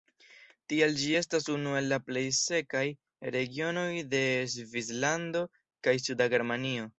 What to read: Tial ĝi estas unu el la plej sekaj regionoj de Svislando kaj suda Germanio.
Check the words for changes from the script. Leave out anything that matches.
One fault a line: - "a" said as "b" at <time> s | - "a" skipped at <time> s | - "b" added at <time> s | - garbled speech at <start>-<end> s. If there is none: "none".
none